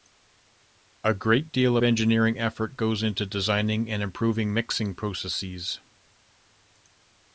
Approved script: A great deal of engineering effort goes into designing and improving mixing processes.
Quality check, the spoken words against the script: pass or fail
fail